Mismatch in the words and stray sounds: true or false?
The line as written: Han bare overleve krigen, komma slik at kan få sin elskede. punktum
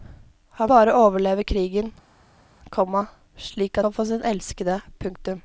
false